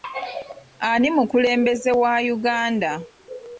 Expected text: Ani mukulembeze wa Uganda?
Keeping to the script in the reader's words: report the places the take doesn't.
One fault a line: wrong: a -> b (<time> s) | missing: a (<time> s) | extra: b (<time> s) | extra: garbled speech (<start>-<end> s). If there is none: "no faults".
no faults